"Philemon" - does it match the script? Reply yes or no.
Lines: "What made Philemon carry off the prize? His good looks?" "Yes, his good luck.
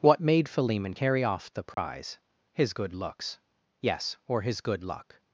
yes